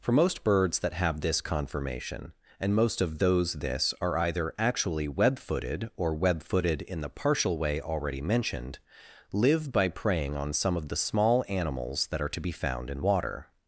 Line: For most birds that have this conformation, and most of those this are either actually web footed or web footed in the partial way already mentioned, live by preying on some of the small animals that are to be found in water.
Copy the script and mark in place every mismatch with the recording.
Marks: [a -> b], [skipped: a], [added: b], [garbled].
For most birds that have this conformation, and most of those this are either actually web footed or web footed in the partial way already mentioned, live by preying on some of the small animals that are to be found in water.